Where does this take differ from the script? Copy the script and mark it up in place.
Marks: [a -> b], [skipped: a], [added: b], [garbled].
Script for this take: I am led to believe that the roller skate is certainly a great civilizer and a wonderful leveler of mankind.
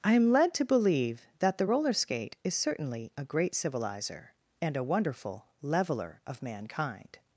I am led to believe that the roller skate is certainly a great civilizer and a wonderful leveler of mankind.